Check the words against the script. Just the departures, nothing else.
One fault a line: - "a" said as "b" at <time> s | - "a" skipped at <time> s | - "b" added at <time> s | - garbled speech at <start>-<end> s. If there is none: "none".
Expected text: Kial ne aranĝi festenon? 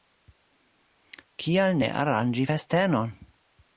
none